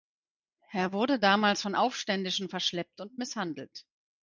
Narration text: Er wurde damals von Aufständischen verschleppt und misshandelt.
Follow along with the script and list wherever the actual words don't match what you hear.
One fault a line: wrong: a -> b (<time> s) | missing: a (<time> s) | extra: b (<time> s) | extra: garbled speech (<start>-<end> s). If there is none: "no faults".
no faults